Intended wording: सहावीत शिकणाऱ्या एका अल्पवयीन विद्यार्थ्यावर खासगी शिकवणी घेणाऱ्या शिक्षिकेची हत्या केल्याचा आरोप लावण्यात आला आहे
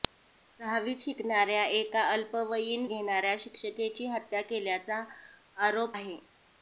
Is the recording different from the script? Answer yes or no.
yes